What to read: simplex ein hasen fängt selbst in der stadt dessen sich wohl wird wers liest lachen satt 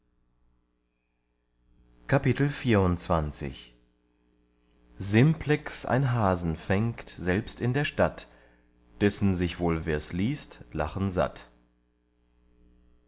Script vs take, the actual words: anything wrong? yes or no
yes